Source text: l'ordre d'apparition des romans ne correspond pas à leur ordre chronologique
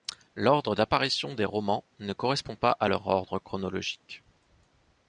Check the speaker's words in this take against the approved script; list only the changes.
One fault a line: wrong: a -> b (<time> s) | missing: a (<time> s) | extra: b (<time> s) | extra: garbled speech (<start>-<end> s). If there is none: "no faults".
no faults